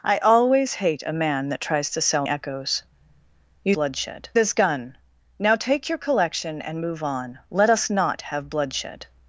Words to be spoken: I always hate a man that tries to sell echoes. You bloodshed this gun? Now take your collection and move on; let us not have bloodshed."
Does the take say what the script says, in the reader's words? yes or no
yes